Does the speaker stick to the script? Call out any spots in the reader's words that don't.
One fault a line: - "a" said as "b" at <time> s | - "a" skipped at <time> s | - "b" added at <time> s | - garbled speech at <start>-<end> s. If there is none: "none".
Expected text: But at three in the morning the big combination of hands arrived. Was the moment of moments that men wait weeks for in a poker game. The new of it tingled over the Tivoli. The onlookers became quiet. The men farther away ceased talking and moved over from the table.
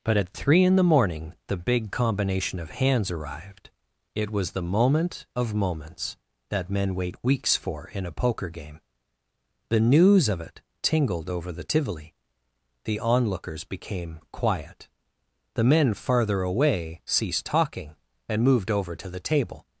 - "It" added at 4.2 s
- "new" said as "news" at 9.8 s
- "from" said as "to" at 18.9 s